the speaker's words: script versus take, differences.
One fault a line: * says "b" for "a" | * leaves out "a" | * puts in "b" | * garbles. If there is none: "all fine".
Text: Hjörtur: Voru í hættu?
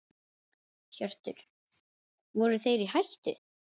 * puts in "þeir"